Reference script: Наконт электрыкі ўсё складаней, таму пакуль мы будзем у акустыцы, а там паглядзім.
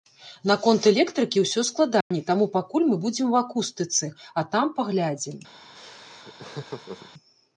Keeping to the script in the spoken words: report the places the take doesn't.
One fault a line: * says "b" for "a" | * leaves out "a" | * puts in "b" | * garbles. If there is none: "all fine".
all fine